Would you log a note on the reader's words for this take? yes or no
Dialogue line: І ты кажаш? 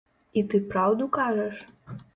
yes